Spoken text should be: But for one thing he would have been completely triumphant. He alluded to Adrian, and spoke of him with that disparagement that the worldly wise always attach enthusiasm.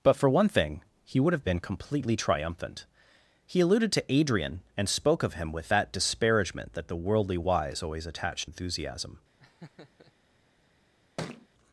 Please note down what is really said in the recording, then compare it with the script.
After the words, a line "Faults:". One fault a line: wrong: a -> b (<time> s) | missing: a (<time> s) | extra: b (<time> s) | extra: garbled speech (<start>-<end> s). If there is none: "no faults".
But for one thing he would have been completely triumphant. He alluded to Adrian, and spoke of him with that disparagement that the worldly wise always attach enthusiasm.
Faults:
no faults